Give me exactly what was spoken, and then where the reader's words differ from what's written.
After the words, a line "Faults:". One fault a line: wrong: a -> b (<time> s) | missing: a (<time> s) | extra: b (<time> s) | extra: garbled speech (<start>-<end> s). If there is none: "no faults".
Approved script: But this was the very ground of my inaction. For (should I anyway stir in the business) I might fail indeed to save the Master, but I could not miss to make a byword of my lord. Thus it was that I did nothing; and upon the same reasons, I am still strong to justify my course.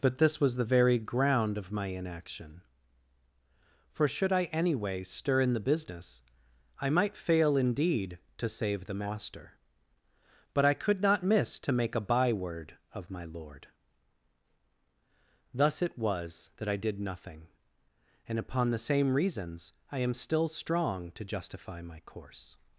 But this was the very ground of my inaction. For (should I anyway stir in the business) I might fail indeed to save the Master, but I could not miss to make a byword of my lord. Thus it was that I did nothing; and upon the same reasons, I am still strong to justify my course.
Faults:
no faults